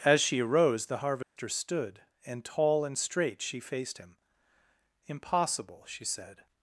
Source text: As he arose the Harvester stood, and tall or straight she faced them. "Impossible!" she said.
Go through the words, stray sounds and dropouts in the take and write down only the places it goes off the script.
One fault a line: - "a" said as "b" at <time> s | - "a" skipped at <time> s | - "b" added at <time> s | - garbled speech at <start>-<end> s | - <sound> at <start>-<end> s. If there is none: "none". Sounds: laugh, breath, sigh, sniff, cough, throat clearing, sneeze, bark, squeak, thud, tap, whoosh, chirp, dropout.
- "he" said as "she" at 0.2 s
- dropout at 1.2-1.4 s
- "or" said as "and" at 2.8 s
- "them" said as "him" at 4.0 s